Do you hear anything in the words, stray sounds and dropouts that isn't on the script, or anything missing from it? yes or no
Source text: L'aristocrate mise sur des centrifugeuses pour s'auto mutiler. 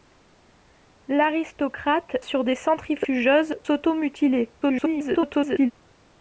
yes